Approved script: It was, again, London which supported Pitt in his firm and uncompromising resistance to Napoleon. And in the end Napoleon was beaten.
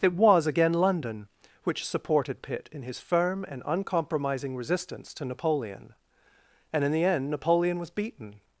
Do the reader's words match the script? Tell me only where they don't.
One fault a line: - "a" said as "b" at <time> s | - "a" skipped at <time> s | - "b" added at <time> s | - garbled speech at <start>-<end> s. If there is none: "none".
none